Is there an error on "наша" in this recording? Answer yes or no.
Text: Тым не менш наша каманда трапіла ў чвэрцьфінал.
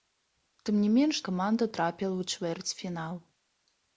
yes